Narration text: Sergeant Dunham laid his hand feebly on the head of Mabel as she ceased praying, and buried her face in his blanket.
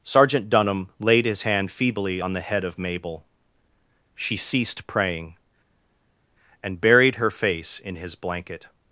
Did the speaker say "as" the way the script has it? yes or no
no